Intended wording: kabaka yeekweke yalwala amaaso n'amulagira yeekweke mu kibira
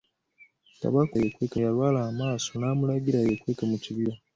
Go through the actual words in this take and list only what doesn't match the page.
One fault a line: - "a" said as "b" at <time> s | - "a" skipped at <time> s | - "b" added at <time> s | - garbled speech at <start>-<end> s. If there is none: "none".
none